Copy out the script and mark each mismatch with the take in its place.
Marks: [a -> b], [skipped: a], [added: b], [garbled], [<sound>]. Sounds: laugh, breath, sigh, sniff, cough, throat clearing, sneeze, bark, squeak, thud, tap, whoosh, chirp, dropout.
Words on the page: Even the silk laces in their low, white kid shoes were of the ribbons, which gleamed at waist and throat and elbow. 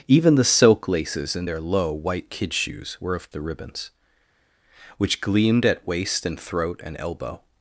Even the silk laces in their low, white kid shoes were of the ribbons, which gleamed at waist and throat and elbow.